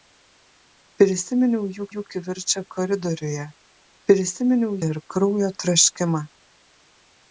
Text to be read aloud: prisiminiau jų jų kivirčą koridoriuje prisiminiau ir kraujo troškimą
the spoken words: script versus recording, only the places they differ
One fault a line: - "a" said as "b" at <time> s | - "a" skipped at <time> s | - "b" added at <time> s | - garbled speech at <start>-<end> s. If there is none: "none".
none